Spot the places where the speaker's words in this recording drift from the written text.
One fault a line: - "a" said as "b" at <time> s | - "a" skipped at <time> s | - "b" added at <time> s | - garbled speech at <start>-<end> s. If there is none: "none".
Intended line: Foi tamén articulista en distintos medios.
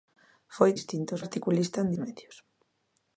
- "tamén" said as "distintos" at 0.8 s
- "distintos" skipped at 1.9 s